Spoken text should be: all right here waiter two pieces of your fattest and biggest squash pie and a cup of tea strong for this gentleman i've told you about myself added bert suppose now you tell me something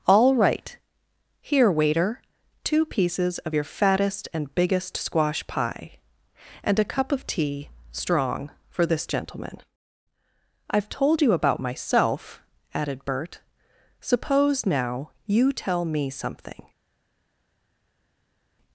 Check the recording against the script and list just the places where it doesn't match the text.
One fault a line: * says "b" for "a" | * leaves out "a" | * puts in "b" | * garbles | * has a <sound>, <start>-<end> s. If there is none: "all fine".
all fine